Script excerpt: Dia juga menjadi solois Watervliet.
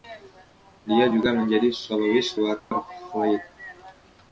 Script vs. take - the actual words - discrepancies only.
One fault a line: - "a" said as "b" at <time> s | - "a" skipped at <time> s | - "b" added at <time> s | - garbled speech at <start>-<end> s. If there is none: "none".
none